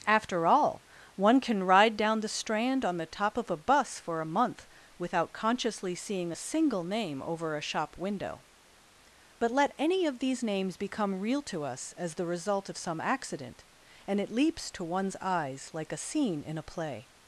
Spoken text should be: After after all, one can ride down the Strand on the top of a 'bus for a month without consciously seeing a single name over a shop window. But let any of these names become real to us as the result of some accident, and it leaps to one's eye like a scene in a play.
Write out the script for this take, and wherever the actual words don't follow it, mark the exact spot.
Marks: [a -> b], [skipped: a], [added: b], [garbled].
After [skipped: after] all, one can ride down the Strand on the top of a 'bus for a month without consciously seeing a single name over a shop window. But let any of these names become real to us as the result of some accident, and it leaps to one's [eye -> eyes] like a scene in a play.